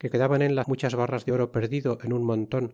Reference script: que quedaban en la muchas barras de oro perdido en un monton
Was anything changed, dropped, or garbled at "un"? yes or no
no